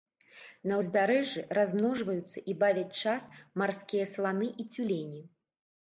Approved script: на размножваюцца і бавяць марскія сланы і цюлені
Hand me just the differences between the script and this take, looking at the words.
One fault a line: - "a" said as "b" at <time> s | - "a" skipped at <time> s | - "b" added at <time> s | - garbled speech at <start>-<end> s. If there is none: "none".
- "ўзбярэжжы" added at 0.8 s
- "час" added at 3.0 s